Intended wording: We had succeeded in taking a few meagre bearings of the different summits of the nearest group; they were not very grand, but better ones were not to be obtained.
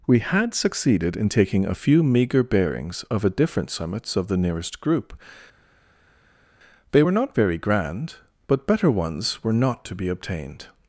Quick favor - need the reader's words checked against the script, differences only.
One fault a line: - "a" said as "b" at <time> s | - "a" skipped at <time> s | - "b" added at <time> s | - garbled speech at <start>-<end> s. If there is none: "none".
- "the" said as "a" at 3.2 s